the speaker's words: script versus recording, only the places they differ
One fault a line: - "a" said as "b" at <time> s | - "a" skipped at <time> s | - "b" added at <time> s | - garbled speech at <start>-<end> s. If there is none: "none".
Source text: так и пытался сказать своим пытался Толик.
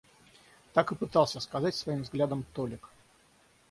- "пытался" said as "взглядом" at 2.0 s